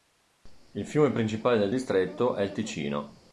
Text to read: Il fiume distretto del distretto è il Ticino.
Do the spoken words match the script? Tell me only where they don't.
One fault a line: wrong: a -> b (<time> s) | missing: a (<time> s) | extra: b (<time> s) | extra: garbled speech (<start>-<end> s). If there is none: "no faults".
wrong: distretto -> principale (1.1 s)